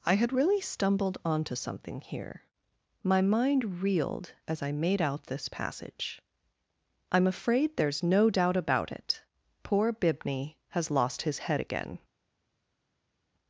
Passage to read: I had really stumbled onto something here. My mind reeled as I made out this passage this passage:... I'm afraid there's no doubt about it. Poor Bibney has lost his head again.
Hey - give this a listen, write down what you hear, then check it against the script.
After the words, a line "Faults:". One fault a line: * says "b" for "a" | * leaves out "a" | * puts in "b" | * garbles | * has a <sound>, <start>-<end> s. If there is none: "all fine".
I had really stumbled onto something here. My mind reeled as I made out this passage:... I'm afraid there's no doubt about it. Poor Bibney has lost his head again.
Faults:
* leaves out "this passage"